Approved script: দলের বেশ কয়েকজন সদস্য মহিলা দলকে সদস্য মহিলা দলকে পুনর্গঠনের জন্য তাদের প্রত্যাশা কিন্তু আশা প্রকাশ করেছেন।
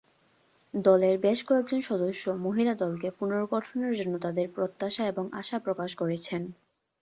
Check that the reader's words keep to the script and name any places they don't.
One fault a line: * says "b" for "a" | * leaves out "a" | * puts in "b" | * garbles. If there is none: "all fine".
* leaves out "সদস্য মহিলা দলকে"
* says "এবং" for "কিন্তু"